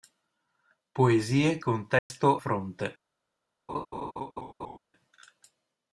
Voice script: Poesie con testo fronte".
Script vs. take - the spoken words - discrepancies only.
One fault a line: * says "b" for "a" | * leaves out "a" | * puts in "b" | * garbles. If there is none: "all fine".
all fine